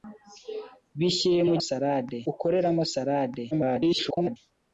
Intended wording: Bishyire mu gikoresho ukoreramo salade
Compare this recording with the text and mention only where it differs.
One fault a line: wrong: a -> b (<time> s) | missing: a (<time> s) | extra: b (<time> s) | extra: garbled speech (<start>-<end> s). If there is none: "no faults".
wrong: gikoresho -> salade (1.7 s)
extra: garbled speech (3.5-4.4 s)